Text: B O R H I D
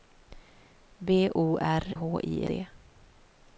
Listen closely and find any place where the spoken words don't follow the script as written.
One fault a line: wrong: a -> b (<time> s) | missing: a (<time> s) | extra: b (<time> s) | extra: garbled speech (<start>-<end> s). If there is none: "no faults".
no faults